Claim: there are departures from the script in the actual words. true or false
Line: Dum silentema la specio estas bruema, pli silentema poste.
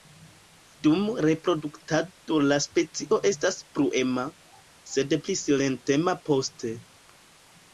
true